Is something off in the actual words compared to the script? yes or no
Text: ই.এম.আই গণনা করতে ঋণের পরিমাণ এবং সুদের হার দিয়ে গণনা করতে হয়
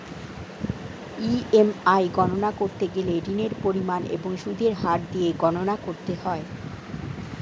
yes